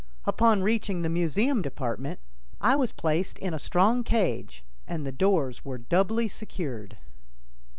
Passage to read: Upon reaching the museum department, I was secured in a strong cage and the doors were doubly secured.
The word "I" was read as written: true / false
true